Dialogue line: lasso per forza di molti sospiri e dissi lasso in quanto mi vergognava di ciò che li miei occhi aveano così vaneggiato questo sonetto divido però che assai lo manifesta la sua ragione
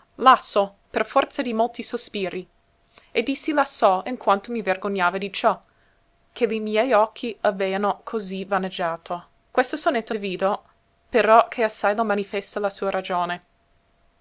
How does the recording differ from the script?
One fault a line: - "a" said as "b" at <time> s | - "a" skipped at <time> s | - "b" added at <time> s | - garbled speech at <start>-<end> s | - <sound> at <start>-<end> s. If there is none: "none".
none